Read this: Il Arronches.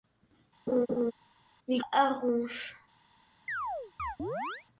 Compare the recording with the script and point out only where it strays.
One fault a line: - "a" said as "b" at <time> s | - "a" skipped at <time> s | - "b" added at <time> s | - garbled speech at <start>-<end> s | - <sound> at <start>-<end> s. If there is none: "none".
- laugh at 0.7-1.1 s
- chirp at 3.5-4.7 s